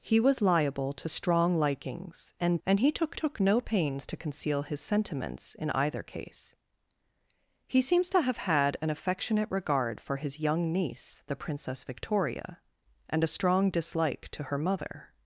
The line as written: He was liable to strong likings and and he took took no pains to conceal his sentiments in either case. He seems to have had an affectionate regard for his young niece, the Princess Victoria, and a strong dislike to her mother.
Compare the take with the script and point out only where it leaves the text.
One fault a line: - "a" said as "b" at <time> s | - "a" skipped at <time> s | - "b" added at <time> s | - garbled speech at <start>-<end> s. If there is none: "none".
none